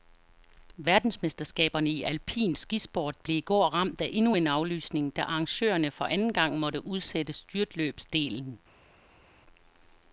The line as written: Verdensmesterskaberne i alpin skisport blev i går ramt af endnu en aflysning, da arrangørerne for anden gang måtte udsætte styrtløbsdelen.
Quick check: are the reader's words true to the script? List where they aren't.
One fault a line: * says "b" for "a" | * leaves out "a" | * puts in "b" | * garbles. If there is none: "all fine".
all fine